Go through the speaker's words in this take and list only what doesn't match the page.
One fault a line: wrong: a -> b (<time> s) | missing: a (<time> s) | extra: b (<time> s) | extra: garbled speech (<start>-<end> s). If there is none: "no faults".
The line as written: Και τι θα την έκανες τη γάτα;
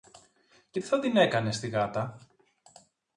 no faults